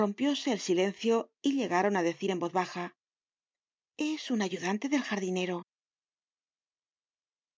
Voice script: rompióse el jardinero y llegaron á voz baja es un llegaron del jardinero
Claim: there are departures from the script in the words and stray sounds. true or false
true